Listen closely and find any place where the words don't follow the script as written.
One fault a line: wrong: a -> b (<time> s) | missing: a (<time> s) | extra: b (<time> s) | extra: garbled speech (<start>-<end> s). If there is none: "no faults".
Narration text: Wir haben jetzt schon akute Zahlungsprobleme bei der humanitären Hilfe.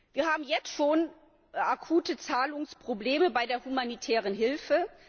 no faults